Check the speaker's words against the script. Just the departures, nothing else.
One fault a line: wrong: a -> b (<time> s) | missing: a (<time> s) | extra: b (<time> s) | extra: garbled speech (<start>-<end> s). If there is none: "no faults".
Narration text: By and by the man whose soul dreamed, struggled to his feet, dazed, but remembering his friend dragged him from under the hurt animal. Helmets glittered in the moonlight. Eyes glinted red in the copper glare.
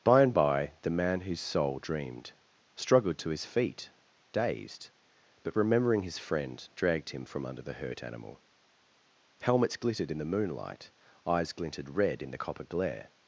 no faults